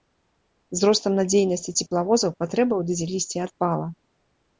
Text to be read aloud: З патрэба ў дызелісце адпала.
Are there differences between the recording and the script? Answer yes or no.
yes